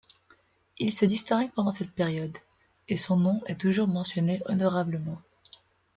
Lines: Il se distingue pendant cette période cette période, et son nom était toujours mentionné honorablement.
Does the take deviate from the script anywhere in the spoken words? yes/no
yes